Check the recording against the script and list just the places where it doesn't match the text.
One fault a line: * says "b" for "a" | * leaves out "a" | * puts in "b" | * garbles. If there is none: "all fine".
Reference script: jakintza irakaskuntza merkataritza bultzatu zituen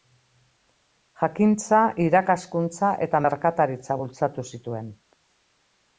* puts in "eta"